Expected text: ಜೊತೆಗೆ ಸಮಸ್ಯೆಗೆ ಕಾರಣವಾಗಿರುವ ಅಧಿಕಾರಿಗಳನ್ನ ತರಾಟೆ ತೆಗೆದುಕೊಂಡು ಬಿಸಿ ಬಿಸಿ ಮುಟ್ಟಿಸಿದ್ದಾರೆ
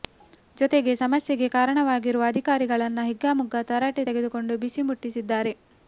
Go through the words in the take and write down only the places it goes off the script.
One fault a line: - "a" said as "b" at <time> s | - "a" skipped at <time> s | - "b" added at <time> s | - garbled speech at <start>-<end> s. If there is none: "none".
- "ಹಿಗ್ಗಾಮುಗ್ಗಾ" added at 3.1 s
- "ಬಿಸಿ" skipped at 4.8 s